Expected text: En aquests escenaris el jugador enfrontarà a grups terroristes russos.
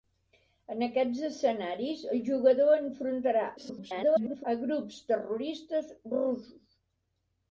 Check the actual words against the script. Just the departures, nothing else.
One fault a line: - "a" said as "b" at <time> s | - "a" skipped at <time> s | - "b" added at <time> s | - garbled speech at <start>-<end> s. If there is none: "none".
- garbled speech at 3.6-4.5 s